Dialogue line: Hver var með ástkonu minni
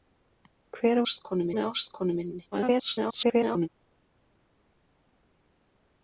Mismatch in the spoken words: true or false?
true